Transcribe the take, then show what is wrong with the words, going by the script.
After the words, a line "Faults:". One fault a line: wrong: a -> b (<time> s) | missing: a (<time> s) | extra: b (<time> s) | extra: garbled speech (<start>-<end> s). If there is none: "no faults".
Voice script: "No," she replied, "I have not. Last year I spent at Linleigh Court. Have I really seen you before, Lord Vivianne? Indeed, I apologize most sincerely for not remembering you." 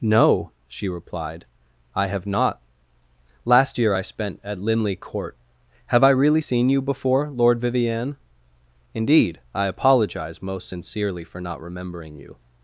"No," she replied, "I have not. Last year I spent at Linleigh Court. Have I really seen you before, Lord Vivianne? Indeed, I apologize most sincerely for not remembering you."
Faults:
no faults